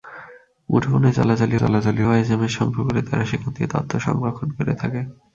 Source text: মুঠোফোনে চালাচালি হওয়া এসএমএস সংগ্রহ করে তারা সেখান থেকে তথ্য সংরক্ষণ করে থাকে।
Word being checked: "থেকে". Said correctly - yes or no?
yes